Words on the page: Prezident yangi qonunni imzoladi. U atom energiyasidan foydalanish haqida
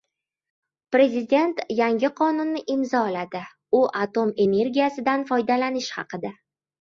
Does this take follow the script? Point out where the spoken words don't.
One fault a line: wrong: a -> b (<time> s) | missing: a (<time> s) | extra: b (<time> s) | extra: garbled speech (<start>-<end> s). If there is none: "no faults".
no faults